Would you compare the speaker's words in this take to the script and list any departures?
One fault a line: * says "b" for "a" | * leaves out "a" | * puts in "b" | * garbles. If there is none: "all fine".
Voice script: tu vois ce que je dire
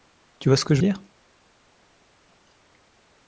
all fine